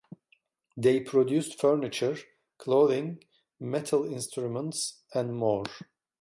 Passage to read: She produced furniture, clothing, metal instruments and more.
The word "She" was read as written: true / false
false